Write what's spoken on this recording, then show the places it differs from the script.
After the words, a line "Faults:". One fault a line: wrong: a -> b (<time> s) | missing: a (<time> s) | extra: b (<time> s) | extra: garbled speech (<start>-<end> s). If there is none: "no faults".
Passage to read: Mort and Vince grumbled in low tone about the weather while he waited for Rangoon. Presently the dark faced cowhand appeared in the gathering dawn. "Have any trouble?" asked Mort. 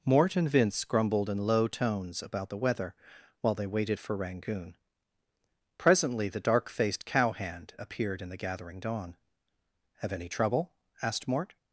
Mort and Vince grumbled in low tones about the weather while they waited for Rangoon. Presently the dark faced cowhand appeared in the gathering dawn. "Have any trouble?" asked Mort.
Faults:
wrong: tone -> tones (1.7 s)
wrong: he -> they (3.5 s)